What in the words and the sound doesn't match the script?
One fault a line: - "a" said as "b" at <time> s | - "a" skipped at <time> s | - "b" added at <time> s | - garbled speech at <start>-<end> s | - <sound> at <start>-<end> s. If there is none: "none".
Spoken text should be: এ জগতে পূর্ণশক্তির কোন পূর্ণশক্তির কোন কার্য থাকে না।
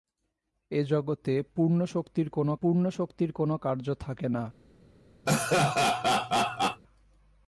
- laugh at 5.3-6.8 s